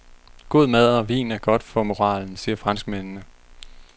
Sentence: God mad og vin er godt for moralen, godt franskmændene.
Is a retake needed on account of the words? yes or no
yes